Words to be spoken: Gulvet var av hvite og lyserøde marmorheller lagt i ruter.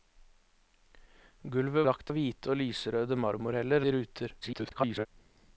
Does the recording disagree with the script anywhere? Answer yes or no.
yes